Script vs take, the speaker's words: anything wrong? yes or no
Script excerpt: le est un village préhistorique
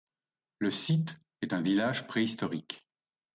yes